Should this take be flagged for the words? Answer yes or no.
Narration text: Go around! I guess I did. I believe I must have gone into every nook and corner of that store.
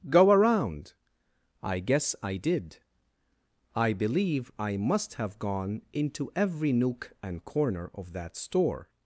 no